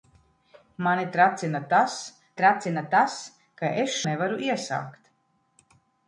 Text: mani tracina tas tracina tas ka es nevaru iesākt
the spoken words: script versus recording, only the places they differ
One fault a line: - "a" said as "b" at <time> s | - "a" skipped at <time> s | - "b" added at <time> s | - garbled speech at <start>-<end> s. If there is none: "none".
none